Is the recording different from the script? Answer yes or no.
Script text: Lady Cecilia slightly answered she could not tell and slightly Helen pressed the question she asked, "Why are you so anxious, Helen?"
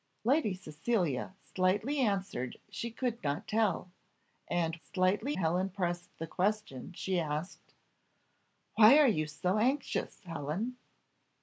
no